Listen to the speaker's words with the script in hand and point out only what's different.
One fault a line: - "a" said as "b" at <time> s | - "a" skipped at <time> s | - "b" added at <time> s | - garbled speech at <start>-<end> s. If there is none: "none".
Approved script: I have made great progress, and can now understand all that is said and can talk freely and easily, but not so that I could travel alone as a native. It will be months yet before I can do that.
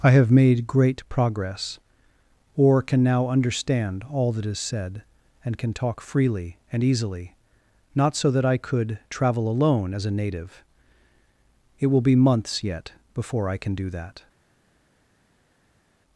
- "and" said as "or" at 2.5 s
- "but" skipped at 7.3 s